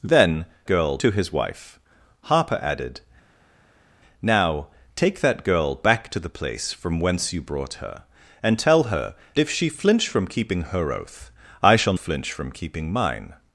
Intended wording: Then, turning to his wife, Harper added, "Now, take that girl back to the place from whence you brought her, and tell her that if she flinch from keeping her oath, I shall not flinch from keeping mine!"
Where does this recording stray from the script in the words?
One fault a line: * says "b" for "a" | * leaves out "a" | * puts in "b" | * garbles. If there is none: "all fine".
* says "girl" for "turning"
* leaves out "that"
* leaves out "not"